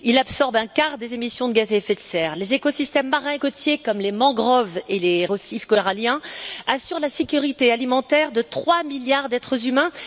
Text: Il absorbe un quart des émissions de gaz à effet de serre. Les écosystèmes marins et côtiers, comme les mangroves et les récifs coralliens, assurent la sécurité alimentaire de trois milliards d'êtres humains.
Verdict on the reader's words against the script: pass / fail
pass